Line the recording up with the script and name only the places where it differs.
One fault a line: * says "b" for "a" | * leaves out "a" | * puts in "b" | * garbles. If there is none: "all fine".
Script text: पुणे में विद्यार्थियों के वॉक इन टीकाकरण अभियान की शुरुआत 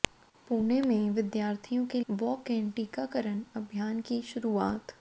all fine